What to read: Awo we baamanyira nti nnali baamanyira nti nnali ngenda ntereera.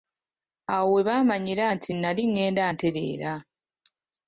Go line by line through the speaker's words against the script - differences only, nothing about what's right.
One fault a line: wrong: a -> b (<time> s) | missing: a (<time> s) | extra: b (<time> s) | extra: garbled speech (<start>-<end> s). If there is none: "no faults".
missing: baamanyira nti nnali (2.2 s)